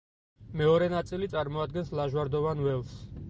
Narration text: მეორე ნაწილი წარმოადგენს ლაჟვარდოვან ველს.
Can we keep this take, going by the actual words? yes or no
yes